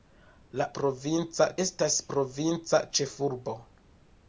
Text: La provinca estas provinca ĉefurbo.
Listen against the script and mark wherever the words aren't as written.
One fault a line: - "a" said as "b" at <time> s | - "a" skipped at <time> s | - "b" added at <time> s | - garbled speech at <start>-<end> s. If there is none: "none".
none